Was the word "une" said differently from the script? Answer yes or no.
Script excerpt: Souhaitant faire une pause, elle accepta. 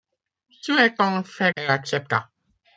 yes